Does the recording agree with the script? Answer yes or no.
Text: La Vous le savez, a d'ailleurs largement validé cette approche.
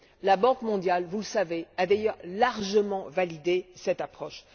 no